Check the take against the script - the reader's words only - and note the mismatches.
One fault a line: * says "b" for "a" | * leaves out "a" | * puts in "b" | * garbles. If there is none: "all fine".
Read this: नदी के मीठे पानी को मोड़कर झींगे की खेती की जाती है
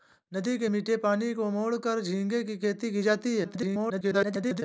* garbles